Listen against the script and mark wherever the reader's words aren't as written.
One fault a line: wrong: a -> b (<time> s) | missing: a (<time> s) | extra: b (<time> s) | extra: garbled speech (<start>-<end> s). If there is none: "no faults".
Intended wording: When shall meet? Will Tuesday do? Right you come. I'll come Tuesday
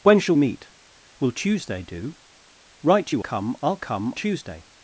no faults